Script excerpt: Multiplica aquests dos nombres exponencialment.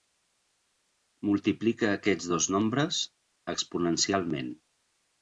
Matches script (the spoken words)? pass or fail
pass